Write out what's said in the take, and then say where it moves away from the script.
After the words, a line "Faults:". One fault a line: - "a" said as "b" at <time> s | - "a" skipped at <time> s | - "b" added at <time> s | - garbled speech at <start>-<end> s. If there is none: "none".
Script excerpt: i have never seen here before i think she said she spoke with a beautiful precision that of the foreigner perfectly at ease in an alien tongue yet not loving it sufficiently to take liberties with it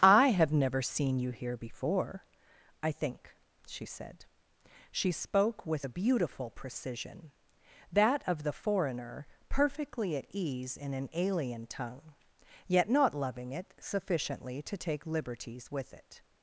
i have never seen you here before i think she said she spoke with a beautiful precision that of the foreigner perfectly at ease in an alien tongue yet not loving it sufficiently to take liberties with it
Faults:
- "you" added at 1.2 s